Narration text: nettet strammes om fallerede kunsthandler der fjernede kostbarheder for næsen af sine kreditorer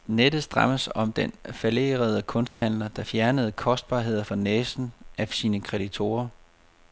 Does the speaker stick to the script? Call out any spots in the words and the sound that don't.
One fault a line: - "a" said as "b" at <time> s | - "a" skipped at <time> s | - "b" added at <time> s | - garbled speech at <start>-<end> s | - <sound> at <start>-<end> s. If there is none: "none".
- "den" added at 1.1 s
- dropout at 2.5-2.6 s